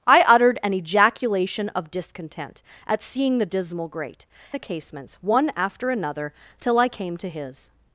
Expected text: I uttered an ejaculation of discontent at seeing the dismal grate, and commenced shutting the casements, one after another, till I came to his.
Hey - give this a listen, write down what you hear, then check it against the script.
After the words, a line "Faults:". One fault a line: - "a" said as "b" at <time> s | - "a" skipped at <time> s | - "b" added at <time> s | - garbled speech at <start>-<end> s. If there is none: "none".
I uttered an ejaculation of discontent at seeing the dismal grate, the casements, one after another, till I came to his.
Faults:
- "and commenced shutting" skipped at 4.2 s